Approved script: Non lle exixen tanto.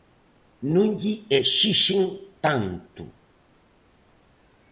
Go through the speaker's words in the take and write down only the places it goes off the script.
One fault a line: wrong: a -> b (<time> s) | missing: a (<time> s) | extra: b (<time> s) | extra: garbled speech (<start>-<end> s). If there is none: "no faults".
no faults